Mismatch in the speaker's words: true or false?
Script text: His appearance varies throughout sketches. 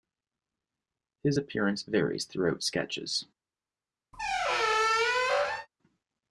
false